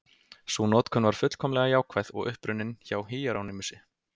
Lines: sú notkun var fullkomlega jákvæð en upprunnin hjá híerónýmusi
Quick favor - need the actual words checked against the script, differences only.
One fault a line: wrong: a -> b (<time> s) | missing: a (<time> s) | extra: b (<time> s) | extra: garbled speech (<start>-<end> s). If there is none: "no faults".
wrong: en -> og (2.1 s)